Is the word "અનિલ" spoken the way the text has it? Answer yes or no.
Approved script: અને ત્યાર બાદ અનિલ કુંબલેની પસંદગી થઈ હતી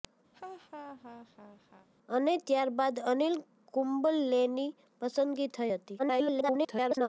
yes